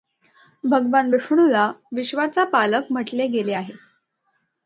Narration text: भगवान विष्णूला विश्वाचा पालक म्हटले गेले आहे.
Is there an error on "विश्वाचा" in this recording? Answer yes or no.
no